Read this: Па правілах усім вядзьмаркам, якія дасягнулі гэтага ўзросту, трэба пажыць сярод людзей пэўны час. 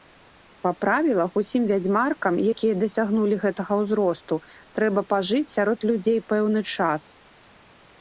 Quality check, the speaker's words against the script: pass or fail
pass